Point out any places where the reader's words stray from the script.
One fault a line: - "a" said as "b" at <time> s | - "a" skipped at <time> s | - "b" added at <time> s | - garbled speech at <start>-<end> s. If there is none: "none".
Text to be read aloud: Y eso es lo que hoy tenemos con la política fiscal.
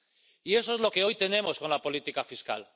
none